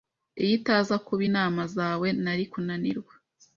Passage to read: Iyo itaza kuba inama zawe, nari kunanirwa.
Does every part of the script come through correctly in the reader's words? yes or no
yes